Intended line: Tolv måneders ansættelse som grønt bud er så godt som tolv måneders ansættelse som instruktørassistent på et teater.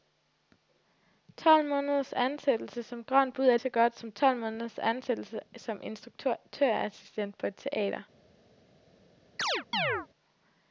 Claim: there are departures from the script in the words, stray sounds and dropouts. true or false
true